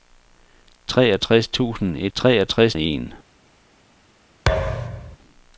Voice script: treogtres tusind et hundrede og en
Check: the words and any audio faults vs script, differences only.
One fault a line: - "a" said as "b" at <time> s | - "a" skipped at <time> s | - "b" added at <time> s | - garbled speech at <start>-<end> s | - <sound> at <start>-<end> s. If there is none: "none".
- "hundrede" said as "treogtres" at 2.1 s
- thud at 4.5-5.2 s